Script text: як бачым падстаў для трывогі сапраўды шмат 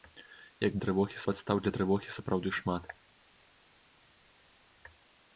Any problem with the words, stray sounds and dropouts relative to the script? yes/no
yes